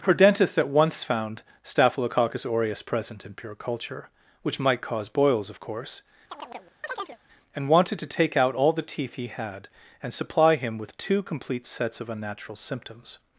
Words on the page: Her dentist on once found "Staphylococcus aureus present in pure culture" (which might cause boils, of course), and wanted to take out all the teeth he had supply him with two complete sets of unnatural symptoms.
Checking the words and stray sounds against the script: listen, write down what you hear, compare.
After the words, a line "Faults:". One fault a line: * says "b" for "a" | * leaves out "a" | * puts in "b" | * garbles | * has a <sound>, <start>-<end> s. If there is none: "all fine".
Her dentist at once found "Staphylococcus aureus present in pure culture" (which might cause boils, of course), and wanted to take out all the teeth he had and supply him with two complete sets of unnatural symptoms.
Faults:
* says "at" for "on"
* has a chirp, 6.3-7.2 s
* puts in "and"